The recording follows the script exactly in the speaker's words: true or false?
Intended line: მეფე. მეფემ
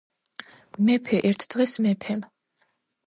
false